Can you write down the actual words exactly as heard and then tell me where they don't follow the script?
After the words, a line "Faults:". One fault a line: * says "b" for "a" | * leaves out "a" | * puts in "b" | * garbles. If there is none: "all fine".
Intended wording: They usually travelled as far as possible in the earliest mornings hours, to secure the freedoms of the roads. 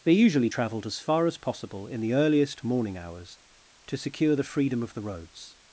They usually travelled as far as possible in the earliest morning hours, to secure the freedom of the roads.
Faults:
* says "morning" for "mornings"
* says "freedom" for "freedoms"